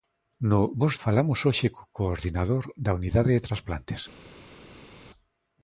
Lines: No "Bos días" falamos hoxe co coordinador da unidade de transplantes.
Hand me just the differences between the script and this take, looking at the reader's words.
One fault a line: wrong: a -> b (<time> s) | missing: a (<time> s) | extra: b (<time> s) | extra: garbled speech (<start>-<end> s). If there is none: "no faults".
missing: días (0.9 s)